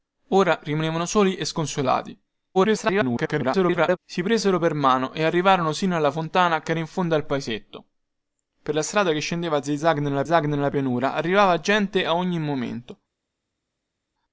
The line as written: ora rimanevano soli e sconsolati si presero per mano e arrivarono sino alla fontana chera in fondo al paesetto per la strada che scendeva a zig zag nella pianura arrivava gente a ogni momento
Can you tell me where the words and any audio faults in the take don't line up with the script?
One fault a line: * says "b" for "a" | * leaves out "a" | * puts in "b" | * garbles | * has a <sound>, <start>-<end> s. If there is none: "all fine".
* garbles
* puts in "zag nella"